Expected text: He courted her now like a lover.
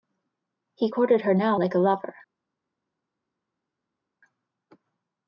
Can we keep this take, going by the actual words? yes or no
yes